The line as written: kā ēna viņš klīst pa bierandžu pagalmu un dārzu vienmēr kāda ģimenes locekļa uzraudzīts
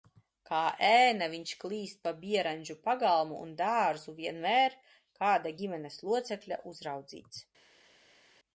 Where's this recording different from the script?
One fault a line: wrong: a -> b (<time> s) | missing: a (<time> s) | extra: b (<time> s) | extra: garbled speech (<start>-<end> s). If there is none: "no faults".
no faults